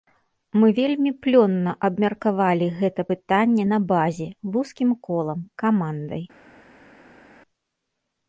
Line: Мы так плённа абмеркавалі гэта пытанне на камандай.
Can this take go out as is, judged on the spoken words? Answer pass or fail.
fail